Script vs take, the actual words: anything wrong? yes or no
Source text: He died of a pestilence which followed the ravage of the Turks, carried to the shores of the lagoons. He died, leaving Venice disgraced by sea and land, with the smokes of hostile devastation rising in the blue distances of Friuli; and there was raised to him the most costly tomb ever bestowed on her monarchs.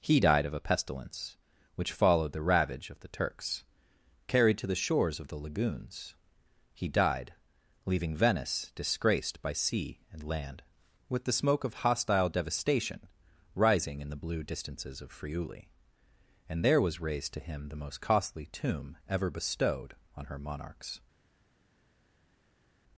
yes